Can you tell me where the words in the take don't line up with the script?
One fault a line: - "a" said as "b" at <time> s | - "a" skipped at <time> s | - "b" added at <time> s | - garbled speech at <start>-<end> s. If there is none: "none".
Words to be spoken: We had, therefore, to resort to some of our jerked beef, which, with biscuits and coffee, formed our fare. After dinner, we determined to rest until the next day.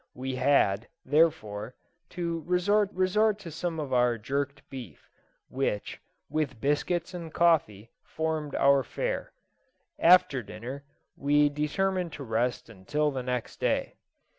- "resort" added at 2.9 s